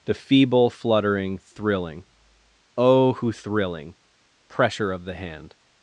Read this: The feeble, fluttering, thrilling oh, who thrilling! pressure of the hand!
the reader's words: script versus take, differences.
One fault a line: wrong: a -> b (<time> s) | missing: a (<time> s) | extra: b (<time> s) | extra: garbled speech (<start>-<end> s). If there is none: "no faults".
no faults